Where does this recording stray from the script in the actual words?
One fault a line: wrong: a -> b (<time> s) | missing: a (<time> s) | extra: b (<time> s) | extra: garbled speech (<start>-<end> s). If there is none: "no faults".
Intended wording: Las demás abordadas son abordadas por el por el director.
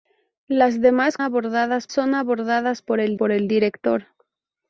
no faults